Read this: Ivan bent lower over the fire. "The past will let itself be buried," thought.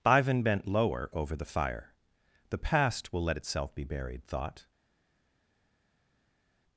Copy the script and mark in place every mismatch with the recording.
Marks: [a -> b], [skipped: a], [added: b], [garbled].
Ivan bent lower over the fire. "The past will let itself be buried," thought.